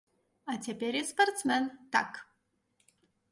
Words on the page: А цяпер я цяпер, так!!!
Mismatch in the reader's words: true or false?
true